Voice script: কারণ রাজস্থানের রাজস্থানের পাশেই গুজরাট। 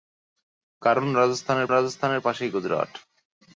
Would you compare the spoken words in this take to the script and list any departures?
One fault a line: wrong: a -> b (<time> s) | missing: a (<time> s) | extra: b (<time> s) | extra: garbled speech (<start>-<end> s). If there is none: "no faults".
no faults